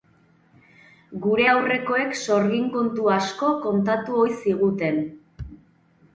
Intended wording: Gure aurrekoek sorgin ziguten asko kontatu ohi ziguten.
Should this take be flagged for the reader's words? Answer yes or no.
yes